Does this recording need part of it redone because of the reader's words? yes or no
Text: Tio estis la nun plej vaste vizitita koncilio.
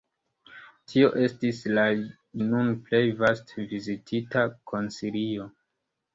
no